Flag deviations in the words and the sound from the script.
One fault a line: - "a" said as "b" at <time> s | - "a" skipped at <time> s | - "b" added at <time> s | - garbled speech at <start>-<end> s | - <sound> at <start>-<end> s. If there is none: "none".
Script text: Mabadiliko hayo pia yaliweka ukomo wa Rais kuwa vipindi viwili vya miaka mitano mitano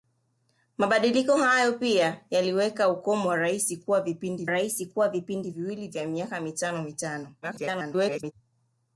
- "Rais kuwa vipindi" added at 4.5 s
- garbled speech at 7.4-8.3 s